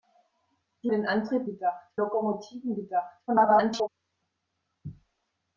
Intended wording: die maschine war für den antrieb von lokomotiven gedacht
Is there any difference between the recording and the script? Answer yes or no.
yes